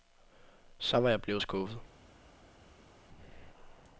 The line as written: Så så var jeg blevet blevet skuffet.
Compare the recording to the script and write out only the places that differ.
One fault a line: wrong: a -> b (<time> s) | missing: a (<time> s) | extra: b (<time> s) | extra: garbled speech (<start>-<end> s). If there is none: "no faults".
missing: så (1.0 s)
missing: blevet (1.4 s)